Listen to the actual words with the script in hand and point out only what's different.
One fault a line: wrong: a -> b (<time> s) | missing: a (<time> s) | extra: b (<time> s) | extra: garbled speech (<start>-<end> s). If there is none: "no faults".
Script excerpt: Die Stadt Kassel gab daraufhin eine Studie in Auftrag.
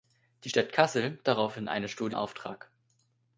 missing: gab (1.2 s)
missing: in (2.2 s)